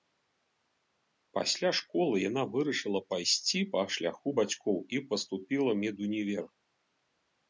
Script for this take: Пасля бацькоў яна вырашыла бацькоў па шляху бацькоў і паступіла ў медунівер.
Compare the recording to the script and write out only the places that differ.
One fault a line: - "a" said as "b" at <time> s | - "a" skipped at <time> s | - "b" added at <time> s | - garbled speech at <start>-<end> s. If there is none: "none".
- "бацькоў" said as "школы" at 1.8 s
- "бацькоў" said as "пайсці" at 3.1 s